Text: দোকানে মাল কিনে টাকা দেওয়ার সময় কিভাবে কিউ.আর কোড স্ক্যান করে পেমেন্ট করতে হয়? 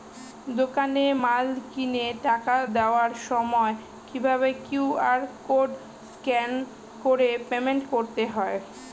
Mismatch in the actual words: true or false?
false